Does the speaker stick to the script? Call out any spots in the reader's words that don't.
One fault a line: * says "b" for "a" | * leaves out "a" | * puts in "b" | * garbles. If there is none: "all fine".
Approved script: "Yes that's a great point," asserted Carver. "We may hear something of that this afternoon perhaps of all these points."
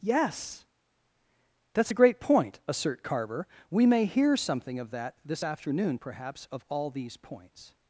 * says "assert" for "asserted"